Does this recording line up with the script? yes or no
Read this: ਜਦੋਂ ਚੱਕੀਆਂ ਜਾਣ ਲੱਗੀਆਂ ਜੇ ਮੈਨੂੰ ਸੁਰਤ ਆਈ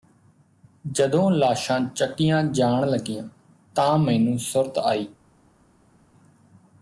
no